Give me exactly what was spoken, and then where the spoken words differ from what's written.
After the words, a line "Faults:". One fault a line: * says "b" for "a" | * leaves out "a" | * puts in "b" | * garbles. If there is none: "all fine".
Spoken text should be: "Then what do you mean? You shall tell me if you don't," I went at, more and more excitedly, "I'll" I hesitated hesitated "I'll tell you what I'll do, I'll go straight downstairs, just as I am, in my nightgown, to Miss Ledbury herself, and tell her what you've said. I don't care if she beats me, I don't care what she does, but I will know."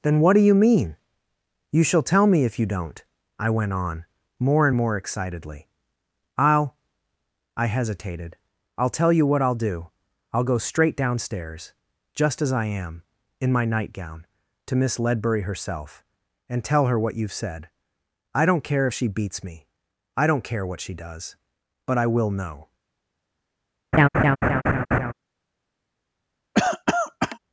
"Then what do you mean? You shall tell me if you don't," I went on, more and more excitedly, "I'll" I hesitated "I'll tell you what I'll do, I'll go straight downstairs, just as I am, in my nightgown, to Miss Ledbury herself, and tell her what you've said. I don't care if she beats me, I don't care what she does, but I will know."
Faults:
* says "on" for "at"
* leaves out "hesitated"